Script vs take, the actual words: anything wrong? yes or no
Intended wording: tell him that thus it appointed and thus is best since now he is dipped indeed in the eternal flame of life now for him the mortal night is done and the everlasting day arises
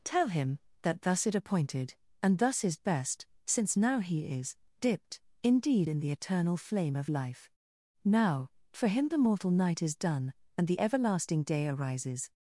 no